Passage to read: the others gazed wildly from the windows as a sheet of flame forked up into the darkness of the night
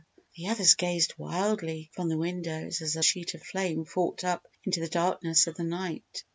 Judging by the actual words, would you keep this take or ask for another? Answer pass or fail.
pass